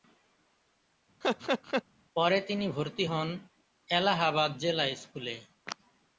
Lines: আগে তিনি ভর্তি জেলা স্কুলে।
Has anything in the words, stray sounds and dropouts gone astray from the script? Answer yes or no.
yes